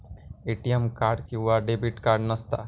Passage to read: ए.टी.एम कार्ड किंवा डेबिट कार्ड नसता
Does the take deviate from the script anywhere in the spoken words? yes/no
no